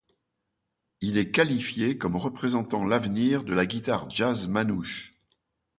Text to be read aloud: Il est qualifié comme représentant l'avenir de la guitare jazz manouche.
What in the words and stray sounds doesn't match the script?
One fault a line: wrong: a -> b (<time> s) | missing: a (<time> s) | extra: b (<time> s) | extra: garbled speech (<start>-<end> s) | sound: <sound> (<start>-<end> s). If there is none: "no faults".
no faults